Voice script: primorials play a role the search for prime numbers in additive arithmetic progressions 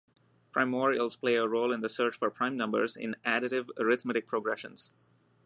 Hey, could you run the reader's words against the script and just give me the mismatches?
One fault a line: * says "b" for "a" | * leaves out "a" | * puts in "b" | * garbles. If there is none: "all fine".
* puts in "in"